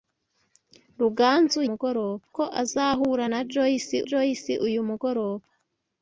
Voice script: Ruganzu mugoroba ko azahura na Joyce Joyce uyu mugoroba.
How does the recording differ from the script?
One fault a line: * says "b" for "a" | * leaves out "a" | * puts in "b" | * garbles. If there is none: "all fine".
all fine